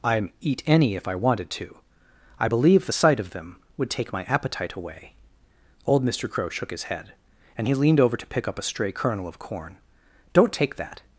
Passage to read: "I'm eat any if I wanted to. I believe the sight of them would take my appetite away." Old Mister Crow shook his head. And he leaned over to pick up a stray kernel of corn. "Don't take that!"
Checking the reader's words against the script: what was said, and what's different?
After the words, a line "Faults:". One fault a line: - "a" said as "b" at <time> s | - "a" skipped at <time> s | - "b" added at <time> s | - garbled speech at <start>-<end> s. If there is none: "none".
"I'm eat any if I wanted to. I believe the sight of them would take my appetite away." Old Mister Crow shook his head. And he leaned over to pick up a stray kernel of corn. "Don't take that!"
Faults:
none